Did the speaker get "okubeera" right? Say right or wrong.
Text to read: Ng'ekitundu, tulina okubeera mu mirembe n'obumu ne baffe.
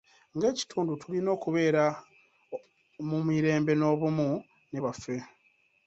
right